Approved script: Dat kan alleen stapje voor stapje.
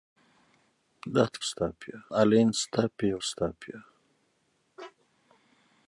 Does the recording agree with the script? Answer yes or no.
no